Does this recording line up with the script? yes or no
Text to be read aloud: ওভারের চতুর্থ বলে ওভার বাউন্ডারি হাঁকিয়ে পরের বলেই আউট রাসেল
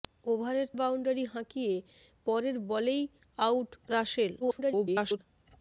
no